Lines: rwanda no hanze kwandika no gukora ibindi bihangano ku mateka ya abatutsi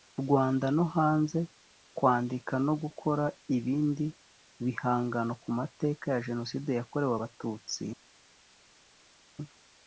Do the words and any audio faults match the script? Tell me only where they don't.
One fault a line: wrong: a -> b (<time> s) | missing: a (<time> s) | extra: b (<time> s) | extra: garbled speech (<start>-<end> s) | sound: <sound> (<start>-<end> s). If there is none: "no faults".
extra: jenoside yakorewe (6.3 s)